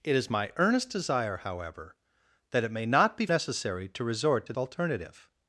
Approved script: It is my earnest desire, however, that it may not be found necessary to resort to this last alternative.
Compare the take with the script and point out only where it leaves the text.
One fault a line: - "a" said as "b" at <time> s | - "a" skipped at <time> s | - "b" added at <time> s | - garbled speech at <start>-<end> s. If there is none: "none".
- "found" skipped at 3.3 s
- "this last" skipped at 4.5 s